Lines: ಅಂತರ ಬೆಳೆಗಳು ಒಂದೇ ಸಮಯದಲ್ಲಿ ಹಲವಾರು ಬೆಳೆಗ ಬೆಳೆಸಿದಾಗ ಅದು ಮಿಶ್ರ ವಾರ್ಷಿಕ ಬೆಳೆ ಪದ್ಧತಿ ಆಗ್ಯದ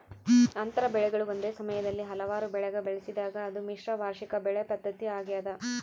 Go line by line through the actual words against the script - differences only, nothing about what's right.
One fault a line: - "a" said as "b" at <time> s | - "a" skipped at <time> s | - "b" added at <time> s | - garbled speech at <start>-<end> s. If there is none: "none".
none